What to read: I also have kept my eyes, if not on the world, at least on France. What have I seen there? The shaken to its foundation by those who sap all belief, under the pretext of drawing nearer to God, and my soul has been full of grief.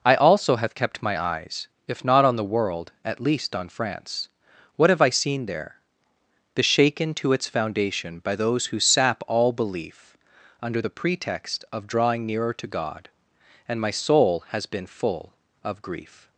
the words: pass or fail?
pass